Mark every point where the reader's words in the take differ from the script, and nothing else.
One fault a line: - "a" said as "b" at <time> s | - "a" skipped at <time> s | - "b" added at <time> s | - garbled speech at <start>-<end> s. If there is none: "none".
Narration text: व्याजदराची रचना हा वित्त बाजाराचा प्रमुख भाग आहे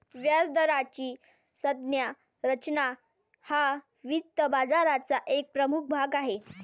- "संज्ञा" added at 1.6 s
- "एक" added at 5.3 s